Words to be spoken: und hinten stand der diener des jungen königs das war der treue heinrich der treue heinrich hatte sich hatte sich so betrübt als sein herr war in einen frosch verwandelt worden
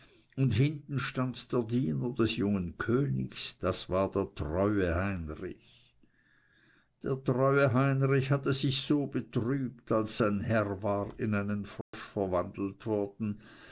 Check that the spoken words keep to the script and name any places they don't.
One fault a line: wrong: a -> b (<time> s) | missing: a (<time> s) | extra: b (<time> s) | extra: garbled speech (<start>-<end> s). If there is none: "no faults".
missing: hatte sich (8.8 s)